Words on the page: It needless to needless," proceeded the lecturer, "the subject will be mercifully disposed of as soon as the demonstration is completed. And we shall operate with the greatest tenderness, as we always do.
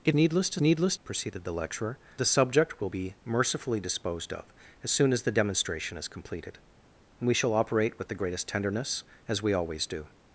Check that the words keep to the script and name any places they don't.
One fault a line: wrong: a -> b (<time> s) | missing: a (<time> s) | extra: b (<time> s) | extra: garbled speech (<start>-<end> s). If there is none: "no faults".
no faults